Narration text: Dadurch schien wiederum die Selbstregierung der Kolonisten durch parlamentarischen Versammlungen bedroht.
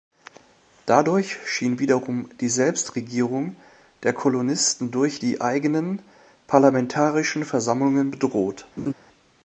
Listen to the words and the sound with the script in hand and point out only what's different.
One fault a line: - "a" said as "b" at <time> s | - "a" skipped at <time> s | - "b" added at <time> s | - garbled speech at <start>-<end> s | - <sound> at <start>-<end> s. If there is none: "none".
- "die eigenen" added at 5.2 s
- laugh at 8.8-8.9 s